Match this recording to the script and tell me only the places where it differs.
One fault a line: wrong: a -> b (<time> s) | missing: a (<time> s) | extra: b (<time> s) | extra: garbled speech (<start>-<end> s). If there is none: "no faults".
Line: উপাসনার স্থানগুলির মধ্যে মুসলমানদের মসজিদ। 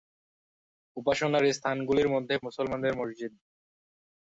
no faults